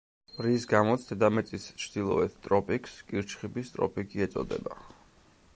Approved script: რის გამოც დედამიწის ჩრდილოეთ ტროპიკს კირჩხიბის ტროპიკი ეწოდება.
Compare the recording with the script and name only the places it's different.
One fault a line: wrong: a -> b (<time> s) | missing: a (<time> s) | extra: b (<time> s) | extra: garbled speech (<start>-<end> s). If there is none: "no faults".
no faults